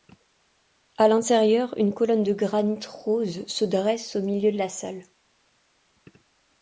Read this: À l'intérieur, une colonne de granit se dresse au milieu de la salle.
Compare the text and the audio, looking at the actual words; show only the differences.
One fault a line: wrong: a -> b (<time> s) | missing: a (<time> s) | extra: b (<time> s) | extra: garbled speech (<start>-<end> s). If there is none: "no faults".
extra: rose (2.9 s)